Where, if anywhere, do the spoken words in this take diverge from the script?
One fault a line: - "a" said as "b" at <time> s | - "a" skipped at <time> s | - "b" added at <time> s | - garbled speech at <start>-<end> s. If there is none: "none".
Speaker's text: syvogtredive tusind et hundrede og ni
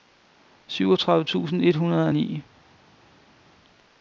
none